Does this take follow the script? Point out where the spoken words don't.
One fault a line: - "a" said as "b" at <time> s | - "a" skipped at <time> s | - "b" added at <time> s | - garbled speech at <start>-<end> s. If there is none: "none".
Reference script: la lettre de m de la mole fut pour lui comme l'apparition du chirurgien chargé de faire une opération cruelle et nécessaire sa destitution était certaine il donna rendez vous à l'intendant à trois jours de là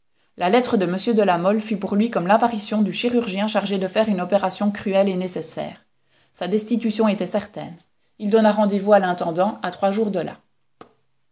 none